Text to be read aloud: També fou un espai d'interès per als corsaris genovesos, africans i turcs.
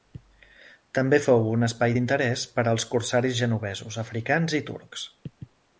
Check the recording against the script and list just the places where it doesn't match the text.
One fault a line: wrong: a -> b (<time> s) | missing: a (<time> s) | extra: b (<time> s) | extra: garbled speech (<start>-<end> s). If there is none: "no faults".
no faults